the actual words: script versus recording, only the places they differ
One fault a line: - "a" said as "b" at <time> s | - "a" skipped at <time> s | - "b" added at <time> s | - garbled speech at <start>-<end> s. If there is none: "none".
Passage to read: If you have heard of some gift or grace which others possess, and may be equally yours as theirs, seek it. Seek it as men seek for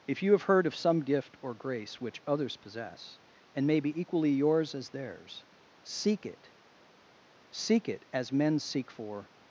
none